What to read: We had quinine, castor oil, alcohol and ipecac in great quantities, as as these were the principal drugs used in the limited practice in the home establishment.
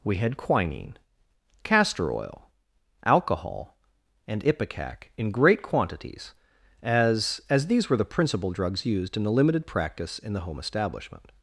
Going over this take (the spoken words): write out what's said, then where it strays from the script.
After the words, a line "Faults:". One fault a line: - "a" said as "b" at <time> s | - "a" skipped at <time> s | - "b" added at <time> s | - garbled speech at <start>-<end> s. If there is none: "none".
We had quinine, castor oil, alcohol and ipecac in great quantities, as as these were the principal drugs used in the limited practice in the home establishment.
Faults:
none